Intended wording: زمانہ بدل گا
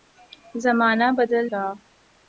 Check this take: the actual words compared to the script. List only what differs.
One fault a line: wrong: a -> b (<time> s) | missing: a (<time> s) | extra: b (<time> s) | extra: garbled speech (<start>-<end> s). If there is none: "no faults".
no faults